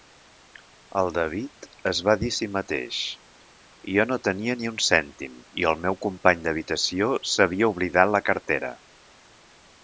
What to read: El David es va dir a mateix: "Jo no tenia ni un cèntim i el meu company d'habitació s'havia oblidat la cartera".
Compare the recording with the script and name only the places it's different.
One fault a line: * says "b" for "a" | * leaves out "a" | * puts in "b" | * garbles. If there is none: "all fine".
* puts in "si"